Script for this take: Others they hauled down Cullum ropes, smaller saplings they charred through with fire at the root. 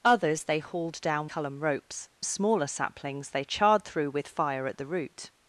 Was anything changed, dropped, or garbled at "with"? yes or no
no